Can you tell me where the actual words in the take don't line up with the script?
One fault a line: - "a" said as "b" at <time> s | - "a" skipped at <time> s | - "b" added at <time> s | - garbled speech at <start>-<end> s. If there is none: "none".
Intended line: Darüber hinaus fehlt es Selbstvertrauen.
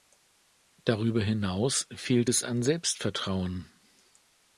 - "an" added at 2.4 s